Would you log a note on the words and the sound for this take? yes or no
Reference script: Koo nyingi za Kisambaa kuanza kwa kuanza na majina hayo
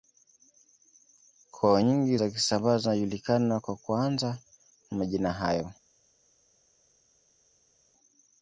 yes